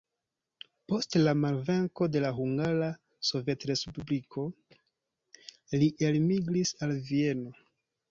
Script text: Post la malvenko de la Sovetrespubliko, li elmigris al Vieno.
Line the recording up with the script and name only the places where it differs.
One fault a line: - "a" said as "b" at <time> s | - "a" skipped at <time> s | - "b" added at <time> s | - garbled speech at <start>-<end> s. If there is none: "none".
- "Hungara" added at 2.4 s